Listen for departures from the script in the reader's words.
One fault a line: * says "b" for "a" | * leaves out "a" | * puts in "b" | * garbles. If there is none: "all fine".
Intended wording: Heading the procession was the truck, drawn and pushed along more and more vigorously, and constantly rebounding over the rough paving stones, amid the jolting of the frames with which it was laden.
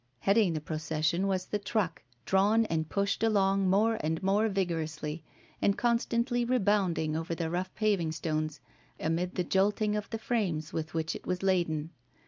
all fine